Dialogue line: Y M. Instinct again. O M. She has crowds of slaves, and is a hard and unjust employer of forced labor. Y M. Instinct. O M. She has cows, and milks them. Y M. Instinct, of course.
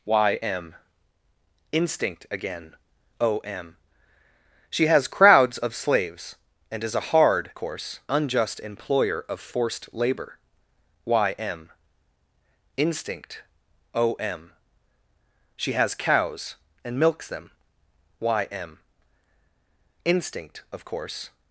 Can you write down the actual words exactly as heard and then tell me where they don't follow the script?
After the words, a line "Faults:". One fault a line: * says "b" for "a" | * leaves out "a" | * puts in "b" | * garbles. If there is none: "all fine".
Y M. Instinct again. O M. She has crowds of slaves, and is a hard course unjust employer of forced labor. Y M. Instinct. O M. She has cows, and milks them. Y M. Instinct, of course.
Faults:
* says "course" for "and"